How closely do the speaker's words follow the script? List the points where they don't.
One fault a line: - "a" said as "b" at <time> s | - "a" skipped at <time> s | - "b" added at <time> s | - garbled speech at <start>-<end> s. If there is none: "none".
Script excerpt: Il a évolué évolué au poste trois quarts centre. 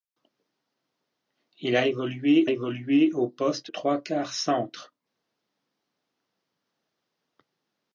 none